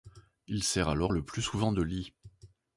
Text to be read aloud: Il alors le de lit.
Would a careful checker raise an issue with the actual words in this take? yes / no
yes